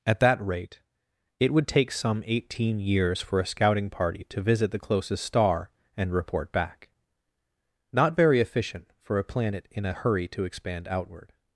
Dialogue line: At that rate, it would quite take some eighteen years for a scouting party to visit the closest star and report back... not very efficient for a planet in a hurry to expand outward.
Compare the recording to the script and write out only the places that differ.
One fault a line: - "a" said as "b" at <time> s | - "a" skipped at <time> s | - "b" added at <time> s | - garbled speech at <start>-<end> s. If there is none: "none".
- "quite" skipped at 1.7 s